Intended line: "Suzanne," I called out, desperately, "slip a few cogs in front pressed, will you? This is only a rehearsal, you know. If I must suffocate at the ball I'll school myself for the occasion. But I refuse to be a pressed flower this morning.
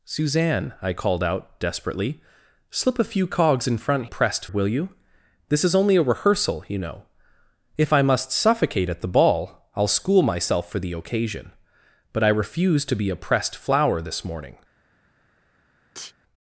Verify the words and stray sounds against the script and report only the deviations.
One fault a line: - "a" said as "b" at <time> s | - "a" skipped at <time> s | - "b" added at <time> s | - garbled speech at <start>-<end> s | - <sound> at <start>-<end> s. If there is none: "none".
- sneeze at 15.9-16.1 s